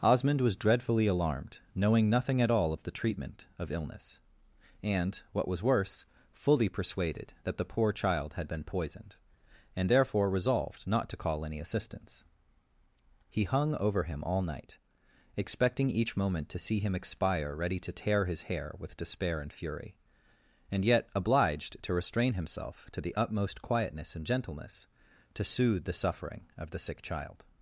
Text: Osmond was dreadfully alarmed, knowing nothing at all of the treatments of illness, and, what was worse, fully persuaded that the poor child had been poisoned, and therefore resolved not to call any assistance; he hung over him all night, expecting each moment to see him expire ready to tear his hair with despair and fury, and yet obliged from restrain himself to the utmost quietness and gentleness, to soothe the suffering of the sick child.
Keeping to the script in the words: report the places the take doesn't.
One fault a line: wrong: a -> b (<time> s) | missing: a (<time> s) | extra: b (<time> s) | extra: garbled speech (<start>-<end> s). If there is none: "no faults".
wrong: treatments -> treatment (2.9 s)
wrong: from -> to (21.8 s)